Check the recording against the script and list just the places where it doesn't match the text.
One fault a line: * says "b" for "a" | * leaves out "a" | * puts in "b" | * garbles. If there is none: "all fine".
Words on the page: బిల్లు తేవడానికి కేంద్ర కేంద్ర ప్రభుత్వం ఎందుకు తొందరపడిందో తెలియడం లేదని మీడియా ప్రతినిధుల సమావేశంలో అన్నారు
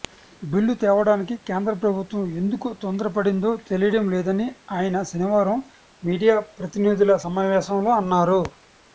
* leaves out "కేంద్ర"
* puts in "ఆయన శనివారం"